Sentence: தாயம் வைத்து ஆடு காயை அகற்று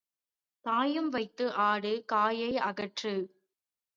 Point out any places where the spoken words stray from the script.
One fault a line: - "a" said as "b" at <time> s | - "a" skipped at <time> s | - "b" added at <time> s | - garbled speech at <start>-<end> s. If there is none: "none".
none